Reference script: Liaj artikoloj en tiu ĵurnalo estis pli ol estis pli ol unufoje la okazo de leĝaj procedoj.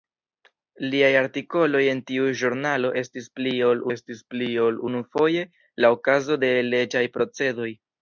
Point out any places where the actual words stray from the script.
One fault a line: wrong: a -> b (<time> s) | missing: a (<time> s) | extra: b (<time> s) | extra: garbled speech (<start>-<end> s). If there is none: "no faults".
no faults